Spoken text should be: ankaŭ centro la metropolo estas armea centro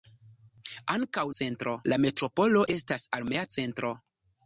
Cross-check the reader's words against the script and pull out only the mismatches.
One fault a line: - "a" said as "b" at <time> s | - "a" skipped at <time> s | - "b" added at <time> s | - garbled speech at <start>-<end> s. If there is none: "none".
none